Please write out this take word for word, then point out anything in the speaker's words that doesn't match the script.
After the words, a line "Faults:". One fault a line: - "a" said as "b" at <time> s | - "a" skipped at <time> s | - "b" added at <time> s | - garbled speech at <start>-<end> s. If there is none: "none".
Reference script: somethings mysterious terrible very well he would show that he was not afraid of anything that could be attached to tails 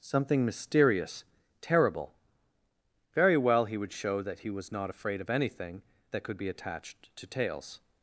something mysterious terrible very well he would show that he was not afraid of anything that could be attached to tails
Faults:
- "somethings" said as "something" at 0.0 s